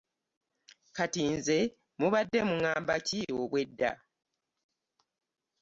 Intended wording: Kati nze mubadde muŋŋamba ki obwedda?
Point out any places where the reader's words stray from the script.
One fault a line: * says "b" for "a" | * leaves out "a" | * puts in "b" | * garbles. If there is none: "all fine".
all fine